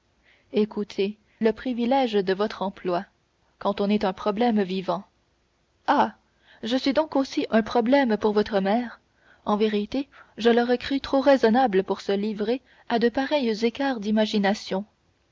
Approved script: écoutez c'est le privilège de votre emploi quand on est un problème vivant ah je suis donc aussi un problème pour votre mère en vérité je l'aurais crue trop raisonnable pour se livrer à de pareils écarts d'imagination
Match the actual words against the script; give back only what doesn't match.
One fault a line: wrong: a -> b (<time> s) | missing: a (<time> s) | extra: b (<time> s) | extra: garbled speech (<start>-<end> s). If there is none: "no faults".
missing: c'est (1.2 s)